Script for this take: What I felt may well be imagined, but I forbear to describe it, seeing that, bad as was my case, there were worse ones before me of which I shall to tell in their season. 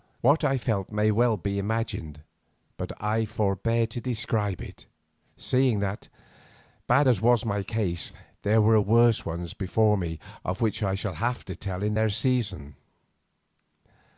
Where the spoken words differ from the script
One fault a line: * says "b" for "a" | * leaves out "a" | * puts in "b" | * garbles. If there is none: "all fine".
* puts in "have"